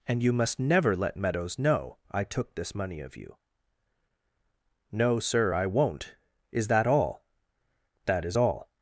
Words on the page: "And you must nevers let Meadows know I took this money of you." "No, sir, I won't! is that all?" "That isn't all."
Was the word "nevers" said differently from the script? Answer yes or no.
yes